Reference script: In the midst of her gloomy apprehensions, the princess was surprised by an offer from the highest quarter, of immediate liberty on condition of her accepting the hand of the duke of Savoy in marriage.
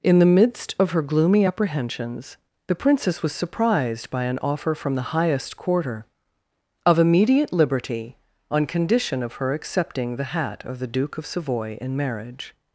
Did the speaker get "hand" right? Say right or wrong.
wrong